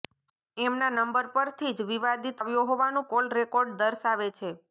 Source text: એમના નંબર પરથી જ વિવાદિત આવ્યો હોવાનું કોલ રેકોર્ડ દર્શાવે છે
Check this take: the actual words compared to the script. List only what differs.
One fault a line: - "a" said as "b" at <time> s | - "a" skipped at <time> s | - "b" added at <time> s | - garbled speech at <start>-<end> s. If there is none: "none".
none